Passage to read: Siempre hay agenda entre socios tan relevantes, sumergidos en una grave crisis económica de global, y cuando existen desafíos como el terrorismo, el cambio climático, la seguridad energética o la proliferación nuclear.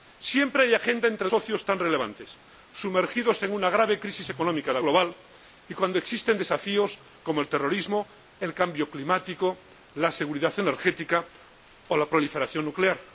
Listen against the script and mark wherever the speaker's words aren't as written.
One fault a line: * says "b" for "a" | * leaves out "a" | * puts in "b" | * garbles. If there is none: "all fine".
all fine